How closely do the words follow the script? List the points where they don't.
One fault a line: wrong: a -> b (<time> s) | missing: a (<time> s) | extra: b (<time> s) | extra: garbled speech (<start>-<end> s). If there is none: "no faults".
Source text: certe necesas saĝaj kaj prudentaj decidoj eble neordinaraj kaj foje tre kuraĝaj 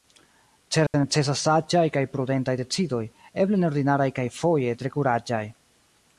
no faults